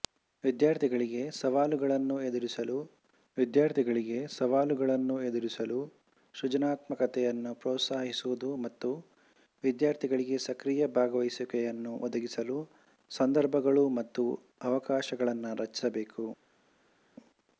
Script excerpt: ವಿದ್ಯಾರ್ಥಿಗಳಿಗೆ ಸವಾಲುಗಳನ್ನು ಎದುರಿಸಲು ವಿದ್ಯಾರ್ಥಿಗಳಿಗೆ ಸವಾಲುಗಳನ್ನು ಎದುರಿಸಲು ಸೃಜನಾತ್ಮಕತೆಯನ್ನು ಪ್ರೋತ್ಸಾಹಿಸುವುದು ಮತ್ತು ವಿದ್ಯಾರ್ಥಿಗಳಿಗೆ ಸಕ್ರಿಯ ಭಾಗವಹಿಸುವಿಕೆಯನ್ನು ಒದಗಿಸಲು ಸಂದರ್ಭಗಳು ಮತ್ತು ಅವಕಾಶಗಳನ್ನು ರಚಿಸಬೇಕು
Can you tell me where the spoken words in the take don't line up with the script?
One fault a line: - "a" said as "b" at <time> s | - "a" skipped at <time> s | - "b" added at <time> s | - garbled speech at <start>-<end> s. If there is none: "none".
none